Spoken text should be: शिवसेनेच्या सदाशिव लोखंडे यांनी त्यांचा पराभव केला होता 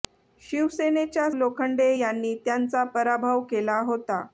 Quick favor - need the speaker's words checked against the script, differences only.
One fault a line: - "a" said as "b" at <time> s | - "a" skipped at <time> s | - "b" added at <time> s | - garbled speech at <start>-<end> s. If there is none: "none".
- "सदाशिव" skipped at 1.3 s